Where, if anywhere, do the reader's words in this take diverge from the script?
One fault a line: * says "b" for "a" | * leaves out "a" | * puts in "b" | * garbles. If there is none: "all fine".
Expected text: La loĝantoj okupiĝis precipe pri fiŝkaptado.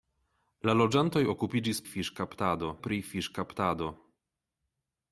* says "fiŝkaptado" for "precipe"